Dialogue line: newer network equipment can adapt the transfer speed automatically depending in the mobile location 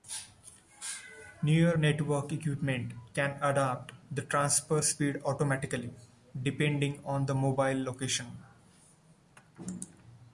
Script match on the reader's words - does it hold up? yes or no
no